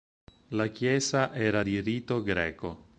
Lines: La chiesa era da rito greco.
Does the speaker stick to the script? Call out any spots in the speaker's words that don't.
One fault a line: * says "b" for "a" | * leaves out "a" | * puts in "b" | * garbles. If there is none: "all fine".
* says "di" for "da"